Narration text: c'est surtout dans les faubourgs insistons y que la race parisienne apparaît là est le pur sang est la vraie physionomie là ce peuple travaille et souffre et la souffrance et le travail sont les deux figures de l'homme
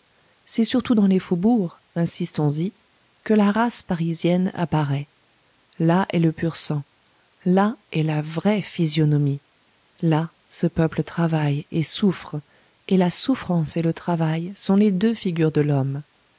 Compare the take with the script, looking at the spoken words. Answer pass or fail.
fail